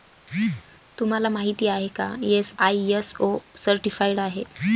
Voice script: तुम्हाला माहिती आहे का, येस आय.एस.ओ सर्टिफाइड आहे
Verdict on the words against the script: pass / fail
pass